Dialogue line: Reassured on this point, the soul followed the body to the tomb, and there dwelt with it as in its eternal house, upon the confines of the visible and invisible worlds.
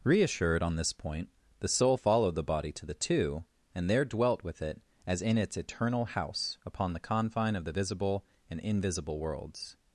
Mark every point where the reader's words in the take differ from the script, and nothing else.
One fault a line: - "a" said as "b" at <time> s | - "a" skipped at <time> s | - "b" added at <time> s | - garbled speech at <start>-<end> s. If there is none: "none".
- "tomb" said as "two" at 2.9 s
- "confines" said as "confine" at 7.0 s